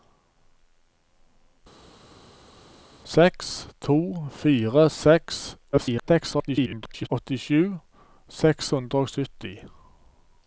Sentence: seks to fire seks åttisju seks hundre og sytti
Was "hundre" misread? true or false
false